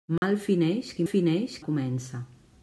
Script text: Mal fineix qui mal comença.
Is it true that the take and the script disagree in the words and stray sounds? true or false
true